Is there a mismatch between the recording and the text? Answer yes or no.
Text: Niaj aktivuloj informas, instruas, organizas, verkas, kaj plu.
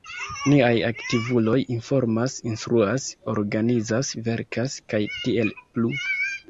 yes